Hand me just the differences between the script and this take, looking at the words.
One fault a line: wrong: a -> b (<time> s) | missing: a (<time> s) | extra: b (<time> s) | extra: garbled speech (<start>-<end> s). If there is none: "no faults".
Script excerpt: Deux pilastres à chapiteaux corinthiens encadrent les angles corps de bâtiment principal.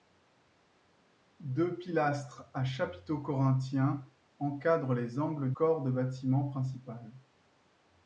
no faults